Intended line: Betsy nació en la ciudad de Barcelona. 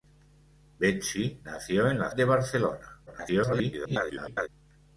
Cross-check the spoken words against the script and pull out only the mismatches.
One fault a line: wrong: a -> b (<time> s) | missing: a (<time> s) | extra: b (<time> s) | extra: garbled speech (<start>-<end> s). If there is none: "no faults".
missing: ciudad (2.1 s)
extra: garbled speech (3.1-4.5 s)